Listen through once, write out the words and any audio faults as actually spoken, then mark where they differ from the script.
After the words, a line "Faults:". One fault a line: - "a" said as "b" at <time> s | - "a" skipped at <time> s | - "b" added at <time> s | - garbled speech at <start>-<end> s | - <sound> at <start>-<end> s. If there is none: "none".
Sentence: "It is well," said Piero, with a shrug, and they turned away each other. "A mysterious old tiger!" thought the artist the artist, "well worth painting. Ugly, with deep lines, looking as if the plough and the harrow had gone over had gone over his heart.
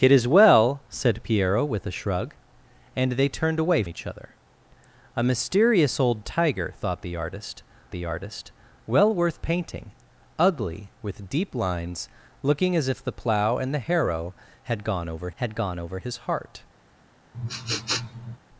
"It is well," said Piero, with a shrug, and they turned away each other. "A mysterious old tiger!" thought the artist the artist, "well worth painting. Ugly, with deep lines, looking as if the plough and the harrow had gone over had gone over his heart.
Faults:
- sniff at 17.3-18.4 s